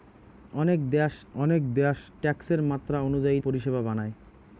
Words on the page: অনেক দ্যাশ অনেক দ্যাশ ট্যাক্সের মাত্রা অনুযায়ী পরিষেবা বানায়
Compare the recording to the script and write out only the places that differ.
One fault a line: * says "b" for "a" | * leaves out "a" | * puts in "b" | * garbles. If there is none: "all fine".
all fine